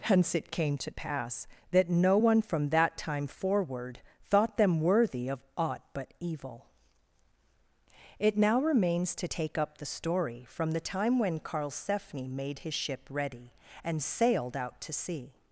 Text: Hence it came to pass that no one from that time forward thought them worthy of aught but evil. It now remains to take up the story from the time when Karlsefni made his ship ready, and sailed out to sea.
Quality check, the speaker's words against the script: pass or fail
pass